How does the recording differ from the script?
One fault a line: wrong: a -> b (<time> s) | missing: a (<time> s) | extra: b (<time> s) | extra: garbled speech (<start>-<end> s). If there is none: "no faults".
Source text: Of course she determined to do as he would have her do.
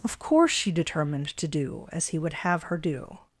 no faults